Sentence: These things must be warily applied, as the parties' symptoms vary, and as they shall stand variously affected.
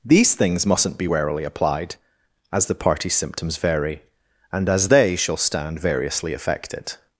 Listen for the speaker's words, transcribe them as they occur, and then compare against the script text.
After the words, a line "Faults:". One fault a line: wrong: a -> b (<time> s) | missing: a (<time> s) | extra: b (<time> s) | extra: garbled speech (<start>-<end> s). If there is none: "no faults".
These things mustn't be warily applied, as the parties' symptoms vary, and as they shall stand variously affected.
Faults:
wrong: must -> mustn't (0.7 s)